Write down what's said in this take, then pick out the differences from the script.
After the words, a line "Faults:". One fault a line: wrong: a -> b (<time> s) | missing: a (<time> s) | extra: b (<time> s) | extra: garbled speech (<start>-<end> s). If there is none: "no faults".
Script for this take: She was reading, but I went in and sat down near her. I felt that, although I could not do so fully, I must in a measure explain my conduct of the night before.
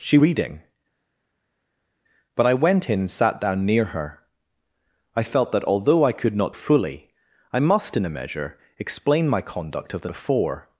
She reading, but I went in and sat down near her. I felt that, although I could not fully, I must in a measure explain my conduct of the before.
Faults:
missing: was (0.2 s)
missing: do so (6.6 s)
missing: night (10.1 s)